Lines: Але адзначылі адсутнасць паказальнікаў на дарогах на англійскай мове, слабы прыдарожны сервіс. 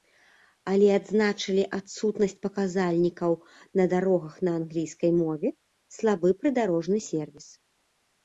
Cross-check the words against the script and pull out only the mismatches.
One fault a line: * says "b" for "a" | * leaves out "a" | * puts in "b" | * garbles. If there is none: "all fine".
all fine